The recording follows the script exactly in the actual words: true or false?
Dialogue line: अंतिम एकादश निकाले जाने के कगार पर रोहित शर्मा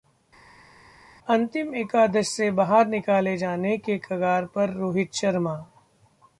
false